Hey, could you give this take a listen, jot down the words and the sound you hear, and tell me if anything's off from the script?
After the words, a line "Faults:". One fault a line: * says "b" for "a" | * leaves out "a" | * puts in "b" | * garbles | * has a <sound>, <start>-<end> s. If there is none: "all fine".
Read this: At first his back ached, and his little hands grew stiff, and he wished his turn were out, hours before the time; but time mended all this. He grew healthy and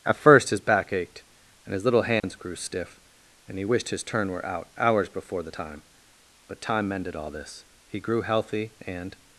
At first his back ached, and his little hands grew stiff, and he wished his turn were out, hours before the time; but time mended all this. He grew healthy and
Faults:
* has a dropout, 2.2-2.2 s